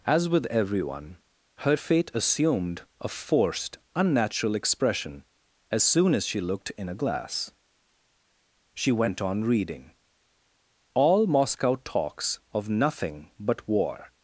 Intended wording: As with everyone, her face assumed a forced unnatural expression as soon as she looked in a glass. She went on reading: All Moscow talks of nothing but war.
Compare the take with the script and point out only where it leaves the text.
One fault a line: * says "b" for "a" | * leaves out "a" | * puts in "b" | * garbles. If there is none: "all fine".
* says "fate" for "face"